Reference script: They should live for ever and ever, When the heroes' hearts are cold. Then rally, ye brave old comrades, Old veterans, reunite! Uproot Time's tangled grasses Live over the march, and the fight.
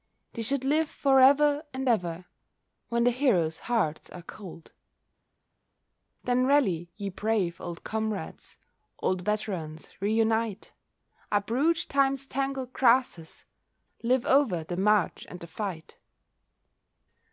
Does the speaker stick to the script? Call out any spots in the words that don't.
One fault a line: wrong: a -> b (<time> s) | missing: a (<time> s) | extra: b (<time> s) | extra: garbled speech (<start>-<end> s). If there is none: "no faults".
no faults